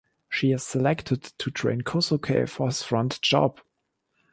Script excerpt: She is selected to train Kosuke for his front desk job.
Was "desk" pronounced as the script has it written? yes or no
no